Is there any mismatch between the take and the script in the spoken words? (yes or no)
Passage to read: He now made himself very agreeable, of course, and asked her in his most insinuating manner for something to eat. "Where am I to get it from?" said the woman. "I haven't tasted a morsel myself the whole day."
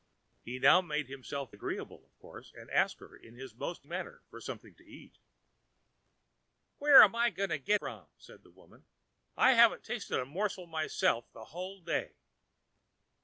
yes